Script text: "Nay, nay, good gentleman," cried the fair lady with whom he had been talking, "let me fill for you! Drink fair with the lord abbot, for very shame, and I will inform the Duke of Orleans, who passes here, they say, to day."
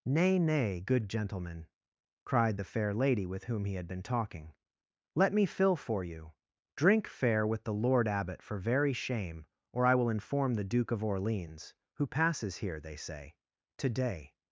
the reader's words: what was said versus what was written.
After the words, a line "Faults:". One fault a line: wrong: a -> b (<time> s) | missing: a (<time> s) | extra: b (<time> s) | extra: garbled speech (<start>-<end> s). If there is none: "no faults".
"Nay, nay, good gentleman," cried the fair lady with whom he had been talking, "let me fill for you! Drink fair with the lord abbot, for very shame, or I will inform the Duke of Orleans, who passes here, they say, to day."
Faults:
wrong: and -> or (9.7 s)